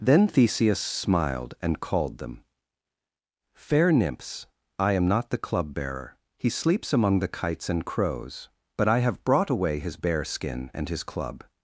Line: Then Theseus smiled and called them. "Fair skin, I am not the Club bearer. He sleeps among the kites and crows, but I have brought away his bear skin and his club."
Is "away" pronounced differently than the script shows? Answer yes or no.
no